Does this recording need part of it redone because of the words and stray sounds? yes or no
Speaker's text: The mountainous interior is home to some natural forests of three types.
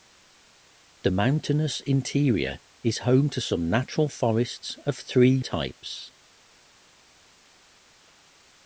no